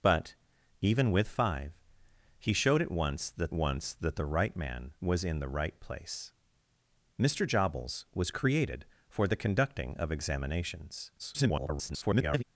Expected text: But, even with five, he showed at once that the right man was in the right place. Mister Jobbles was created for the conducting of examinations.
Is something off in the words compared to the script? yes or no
yes